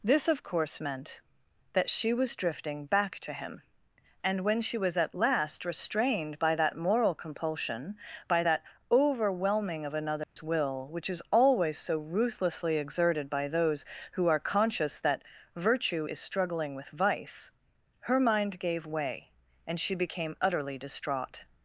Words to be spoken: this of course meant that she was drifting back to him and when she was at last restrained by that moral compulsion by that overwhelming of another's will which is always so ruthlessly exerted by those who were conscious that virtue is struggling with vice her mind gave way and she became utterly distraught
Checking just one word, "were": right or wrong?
wrong